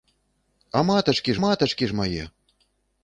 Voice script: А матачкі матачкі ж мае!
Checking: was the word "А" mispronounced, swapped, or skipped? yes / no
no